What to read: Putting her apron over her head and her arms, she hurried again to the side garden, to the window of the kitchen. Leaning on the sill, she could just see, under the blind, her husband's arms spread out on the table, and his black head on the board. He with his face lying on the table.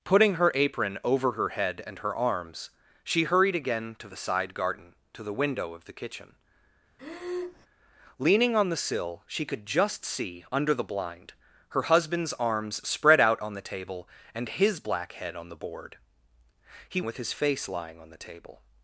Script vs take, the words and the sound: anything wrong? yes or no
yes